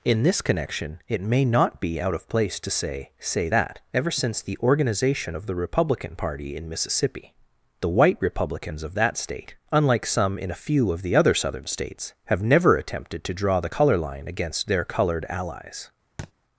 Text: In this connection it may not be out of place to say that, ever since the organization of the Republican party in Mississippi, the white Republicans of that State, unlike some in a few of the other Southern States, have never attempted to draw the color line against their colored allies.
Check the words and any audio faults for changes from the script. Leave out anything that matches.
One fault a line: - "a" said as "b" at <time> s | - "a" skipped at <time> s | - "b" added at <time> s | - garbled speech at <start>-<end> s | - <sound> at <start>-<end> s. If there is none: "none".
- "say" added at 3.2 s
- thud at 16.2-16.3 s